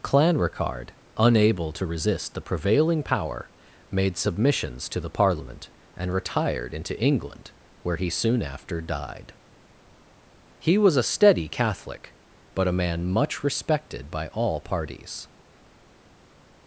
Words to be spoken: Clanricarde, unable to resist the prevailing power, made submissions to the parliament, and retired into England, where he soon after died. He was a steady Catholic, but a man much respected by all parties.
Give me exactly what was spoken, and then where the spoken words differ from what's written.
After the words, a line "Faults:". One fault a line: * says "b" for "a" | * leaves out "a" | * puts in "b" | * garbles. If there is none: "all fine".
Clanricarde, unable to resist the prevailing power, made submissions to the parliament, and retired into England, where he soon after died. He was a steady Catholic, but a man much respected by all parties.
Faults:
all fine